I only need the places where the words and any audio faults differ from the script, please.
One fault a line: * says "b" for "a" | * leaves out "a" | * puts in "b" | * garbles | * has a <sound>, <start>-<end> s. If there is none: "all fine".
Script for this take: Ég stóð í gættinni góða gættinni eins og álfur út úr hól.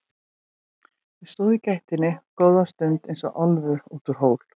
* says "stund" for "gættinni"